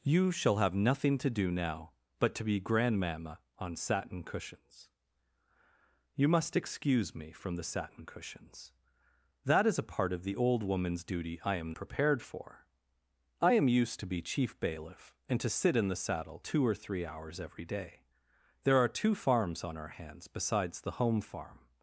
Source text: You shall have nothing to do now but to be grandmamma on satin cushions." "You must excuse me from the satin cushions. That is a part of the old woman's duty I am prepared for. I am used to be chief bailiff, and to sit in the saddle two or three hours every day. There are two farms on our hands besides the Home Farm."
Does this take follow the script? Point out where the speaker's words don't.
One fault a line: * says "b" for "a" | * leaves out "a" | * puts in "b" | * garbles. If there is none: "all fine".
all fine